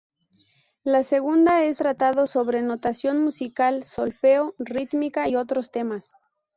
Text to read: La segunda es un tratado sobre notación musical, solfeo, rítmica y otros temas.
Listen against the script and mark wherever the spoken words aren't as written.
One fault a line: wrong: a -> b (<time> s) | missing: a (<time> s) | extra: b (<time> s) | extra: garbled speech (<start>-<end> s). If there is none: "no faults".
missing: un (1.8 s)